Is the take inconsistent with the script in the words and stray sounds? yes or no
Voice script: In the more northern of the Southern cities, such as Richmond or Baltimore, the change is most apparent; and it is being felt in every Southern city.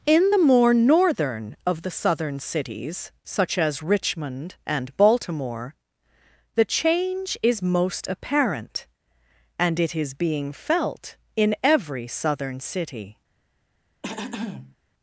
yes